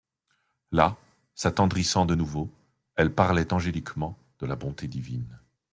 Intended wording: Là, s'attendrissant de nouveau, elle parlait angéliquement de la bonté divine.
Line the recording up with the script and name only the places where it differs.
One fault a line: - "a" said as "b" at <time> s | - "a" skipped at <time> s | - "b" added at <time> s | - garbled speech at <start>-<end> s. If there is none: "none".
none